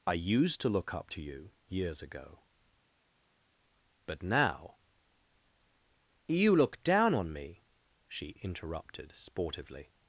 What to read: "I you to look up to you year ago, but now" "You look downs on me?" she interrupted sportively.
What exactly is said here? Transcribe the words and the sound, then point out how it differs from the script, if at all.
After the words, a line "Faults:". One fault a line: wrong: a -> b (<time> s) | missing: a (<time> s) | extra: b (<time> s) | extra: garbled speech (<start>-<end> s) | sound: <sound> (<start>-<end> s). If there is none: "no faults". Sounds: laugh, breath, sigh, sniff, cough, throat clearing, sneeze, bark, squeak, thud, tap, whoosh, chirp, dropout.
"I used to look up to you years ago, but now" "You look down on me?" she interrupted sportively.
Faults:
wrong: you -> used (0.1 s)
wrong: year -> years (1.7 s)
wrong: downs -> down (6.8 s)